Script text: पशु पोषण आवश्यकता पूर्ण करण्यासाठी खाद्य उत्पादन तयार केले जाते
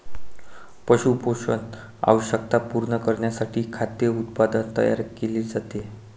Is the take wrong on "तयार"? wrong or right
right